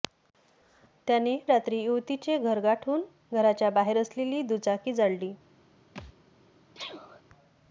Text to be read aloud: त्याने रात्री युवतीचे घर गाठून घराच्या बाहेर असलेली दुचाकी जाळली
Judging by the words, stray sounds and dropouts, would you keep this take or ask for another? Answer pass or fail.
fail